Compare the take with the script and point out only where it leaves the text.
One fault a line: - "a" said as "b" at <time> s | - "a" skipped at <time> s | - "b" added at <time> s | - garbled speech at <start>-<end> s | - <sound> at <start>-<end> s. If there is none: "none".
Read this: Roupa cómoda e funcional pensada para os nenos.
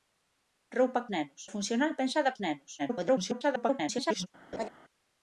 - "cómoda" said as "nenos" at 1.1 s
- "para" skipped at 2.3 s
- garbled speech at 2.8-4.3 s
- laugh at 4.5-4.7 s